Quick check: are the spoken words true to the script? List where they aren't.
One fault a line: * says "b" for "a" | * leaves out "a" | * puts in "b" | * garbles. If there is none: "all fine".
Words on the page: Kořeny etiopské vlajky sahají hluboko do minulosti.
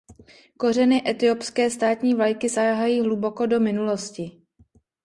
* puts in "státní"